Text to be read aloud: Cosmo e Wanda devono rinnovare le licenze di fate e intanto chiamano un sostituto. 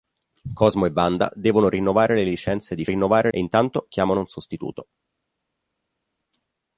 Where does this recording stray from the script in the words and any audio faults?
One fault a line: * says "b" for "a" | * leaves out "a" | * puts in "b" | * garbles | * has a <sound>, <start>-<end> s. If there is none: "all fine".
* says "rinnovare" for "fate"